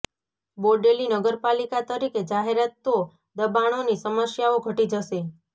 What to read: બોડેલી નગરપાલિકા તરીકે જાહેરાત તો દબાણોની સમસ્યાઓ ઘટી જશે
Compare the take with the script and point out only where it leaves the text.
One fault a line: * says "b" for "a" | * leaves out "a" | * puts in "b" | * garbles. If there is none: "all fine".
all fine